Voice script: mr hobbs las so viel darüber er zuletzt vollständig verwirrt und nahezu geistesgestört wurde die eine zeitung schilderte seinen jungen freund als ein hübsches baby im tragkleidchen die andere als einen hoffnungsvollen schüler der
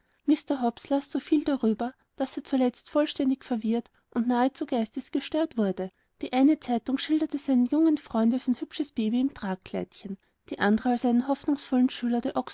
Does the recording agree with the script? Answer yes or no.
no